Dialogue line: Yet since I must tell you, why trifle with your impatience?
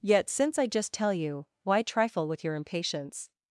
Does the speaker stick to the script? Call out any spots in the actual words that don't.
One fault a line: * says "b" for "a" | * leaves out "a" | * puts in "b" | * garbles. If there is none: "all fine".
* says "just" for "must"